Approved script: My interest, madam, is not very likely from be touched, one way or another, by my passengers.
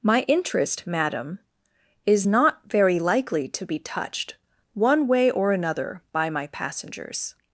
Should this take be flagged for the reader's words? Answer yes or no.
yes